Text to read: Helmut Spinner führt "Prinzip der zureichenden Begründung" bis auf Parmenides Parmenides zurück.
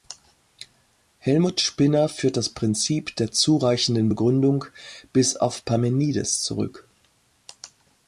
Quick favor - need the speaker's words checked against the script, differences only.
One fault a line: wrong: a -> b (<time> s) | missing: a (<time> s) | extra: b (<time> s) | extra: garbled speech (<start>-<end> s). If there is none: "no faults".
extra: das (2.4 s)
missing: Parmenides (6.4 s)